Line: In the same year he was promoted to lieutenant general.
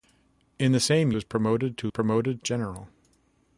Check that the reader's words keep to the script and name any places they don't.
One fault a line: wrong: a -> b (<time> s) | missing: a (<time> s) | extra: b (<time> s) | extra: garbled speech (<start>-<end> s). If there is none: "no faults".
missing: year he (1.1 s)
wrong: lieutenant -> promoted (1.9 s)